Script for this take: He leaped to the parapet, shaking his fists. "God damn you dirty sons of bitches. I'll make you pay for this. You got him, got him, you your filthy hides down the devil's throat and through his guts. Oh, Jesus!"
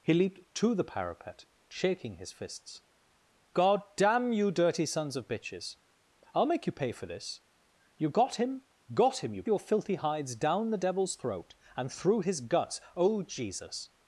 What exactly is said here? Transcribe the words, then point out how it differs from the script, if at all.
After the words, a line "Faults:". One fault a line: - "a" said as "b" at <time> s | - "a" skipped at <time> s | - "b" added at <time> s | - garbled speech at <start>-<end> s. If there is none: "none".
He leaped to the parapet, shaking his fists. "God damn you dirty sons of bitches. I'll make you pay for this. You got him, got him, you your filthy hides down the devil's throat and through his guts. Oh, Jesus!"
Faults:
none